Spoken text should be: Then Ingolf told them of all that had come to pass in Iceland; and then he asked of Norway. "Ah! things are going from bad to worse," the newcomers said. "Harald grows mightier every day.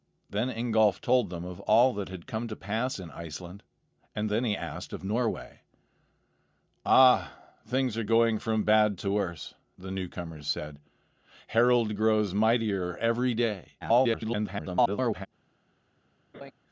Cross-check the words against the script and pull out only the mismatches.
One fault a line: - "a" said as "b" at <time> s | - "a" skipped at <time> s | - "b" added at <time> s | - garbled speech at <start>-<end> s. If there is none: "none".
- garbled speech at 13.8-15.3 s